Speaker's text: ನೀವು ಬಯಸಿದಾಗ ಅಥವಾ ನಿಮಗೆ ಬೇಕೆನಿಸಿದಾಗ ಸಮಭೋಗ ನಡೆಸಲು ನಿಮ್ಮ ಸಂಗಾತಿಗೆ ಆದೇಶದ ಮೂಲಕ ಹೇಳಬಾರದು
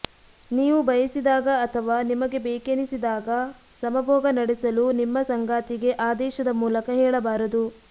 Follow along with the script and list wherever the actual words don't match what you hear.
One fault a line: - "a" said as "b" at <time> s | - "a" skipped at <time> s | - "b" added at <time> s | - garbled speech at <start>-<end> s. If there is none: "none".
none